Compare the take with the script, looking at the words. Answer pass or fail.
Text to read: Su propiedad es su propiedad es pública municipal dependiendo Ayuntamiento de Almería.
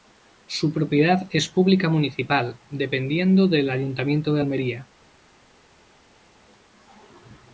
fail